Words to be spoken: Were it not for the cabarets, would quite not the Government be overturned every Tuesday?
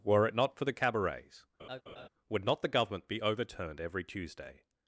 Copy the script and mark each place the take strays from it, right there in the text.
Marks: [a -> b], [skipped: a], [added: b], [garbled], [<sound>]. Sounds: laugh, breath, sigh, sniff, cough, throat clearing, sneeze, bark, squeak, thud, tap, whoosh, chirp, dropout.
Were it not for the cabarets, [laugh] would [skipped: quite] not the Government be overturned every Tuesday?